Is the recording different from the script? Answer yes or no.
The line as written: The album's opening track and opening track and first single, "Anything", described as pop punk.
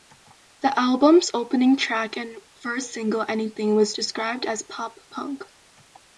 yes